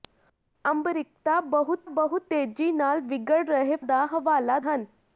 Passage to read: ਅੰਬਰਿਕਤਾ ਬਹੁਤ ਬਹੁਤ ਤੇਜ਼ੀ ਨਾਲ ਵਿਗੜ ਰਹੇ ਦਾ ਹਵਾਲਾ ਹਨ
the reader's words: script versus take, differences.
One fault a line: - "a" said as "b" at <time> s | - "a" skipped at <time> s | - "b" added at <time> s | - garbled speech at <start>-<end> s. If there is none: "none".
none